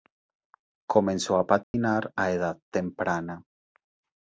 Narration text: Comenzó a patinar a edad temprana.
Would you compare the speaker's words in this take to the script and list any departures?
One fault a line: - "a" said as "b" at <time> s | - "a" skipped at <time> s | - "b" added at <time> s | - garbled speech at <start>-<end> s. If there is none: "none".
none